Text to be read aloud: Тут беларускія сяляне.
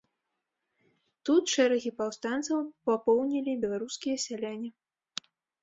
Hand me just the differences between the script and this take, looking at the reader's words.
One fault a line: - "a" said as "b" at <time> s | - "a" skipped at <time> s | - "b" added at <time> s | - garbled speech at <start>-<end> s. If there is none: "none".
- "шэрагі паўстанцаў папоўнілі" added at 1.5 s